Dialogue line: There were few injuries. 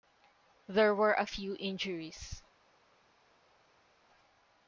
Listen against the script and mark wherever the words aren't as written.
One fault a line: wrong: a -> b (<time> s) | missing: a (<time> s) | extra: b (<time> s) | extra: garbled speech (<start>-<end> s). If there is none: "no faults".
extra: a (1.1 s)